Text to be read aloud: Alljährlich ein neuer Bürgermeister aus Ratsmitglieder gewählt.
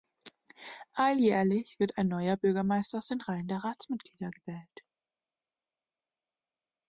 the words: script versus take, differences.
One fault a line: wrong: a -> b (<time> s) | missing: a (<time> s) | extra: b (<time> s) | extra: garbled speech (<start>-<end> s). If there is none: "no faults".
extra: wird (1.8 s)
extra: den Reihen der (3.1 s)